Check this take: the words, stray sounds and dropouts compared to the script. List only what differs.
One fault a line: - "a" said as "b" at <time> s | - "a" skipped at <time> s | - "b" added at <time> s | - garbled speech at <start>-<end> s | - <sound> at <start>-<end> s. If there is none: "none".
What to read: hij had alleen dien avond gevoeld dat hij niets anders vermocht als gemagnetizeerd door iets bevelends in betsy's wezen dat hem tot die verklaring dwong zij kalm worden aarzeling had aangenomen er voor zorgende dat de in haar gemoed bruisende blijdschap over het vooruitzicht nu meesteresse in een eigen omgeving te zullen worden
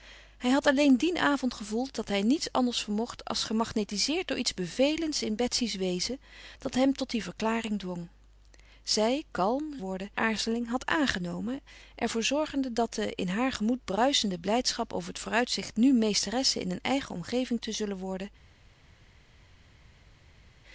none